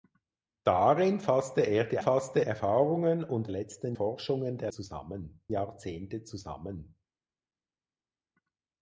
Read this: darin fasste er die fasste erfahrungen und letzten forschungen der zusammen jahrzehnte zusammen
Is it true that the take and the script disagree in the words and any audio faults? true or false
false